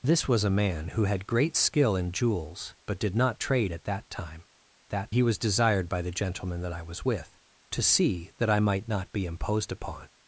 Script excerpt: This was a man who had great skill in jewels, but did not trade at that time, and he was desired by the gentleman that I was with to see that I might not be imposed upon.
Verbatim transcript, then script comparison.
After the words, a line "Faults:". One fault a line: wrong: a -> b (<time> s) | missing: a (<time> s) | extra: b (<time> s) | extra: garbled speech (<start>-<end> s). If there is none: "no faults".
This was a man who had great skill in jewels, but did not trade at that time, that he was desired by the gentleman that I was with to see that I might not be imposed upon.
Faults:
wrong: and -> that (4.9 s)